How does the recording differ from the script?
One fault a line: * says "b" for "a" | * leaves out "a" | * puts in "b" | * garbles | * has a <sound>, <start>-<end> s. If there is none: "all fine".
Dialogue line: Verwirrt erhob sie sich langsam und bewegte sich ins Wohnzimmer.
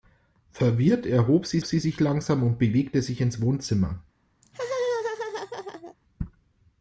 * puts in "sie"
* has a laugh, 4.4-6.0 s